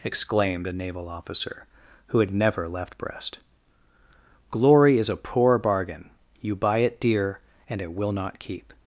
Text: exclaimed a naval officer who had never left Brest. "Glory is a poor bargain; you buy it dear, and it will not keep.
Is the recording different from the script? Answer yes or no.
no